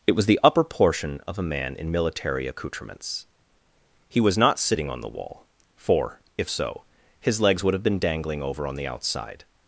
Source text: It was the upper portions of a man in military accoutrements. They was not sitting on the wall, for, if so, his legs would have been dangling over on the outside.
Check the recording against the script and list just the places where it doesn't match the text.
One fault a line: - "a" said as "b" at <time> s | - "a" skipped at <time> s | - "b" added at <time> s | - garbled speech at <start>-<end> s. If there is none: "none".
- "portions" said as "portion" at 0.6 s
- "They" said as "He" at 4.1 s